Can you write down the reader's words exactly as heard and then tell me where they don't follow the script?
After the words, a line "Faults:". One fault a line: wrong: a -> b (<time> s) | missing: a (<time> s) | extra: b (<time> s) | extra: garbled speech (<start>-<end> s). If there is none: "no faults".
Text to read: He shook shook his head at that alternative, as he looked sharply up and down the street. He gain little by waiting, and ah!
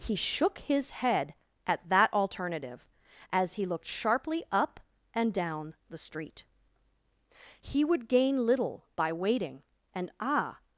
He shook his head at that alternative, as he looked sharply up and down the street. He would gain little by waiting, and ah!
Faults:
missing: shook (0.6 s)
extra: would (7.8 s)